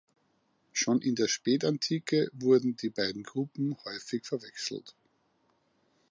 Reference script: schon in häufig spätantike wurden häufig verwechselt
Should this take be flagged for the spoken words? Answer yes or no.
yes